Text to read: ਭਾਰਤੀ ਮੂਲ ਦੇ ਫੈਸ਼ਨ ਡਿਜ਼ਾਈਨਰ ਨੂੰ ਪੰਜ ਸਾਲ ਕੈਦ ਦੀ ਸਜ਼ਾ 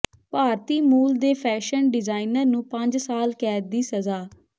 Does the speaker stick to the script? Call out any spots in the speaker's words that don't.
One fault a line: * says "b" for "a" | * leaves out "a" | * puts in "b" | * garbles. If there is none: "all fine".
all fine